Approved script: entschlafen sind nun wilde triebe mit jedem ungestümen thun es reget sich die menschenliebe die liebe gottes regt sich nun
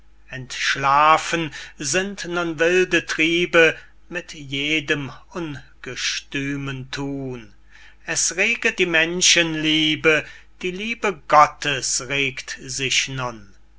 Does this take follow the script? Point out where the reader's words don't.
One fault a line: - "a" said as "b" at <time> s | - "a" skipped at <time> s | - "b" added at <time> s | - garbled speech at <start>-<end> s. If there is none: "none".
- "sich" skipped at 8.8 s